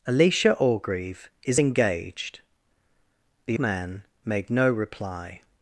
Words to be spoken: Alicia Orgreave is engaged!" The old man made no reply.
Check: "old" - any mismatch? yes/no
yes